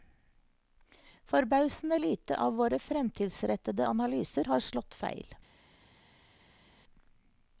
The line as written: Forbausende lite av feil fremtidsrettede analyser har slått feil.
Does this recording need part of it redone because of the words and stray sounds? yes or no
yes